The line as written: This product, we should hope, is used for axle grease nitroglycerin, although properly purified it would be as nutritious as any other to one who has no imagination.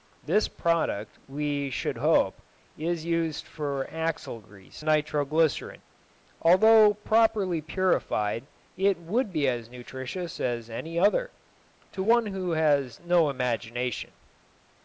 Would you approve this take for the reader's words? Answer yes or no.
yes